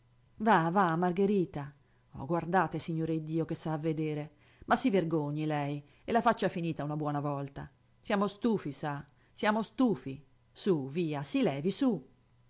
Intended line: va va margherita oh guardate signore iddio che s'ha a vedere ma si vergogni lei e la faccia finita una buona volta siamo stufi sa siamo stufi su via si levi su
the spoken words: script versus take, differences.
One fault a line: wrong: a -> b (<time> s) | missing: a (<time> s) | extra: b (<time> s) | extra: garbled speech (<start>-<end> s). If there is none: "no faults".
no faults